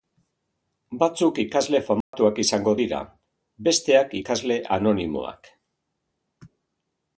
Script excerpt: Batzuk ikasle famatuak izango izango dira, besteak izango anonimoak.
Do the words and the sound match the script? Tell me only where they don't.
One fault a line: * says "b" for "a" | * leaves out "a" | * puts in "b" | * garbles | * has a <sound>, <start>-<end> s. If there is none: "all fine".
* has a dropout, 2.0-2.1 s
* leaves out "izango"
* says "ikasle" for "izango"